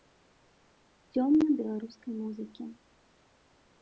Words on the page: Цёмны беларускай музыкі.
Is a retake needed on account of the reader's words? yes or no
no